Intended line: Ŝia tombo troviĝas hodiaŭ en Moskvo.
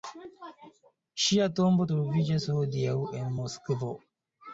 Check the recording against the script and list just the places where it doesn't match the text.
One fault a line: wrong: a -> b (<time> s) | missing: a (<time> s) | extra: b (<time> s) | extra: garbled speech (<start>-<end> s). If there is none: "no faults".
no faults